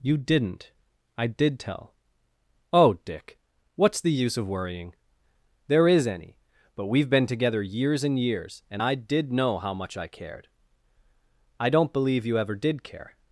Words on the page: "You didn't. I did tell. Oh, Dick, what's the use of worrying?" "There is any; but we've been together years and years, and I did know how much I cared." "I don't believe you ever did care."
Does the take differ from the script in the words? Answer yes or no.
no